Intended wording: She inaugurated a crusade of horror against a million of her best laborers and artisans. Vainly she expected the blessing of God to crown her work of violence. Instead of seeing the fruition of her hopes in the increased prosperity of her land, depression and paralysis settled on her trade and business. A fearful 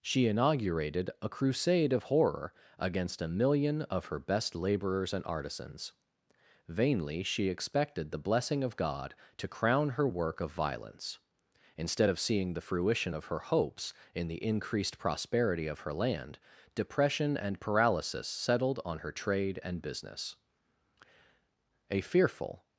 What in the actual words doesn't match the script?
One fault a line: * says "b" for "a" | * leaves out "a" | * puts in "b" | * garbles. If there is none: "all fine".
all fine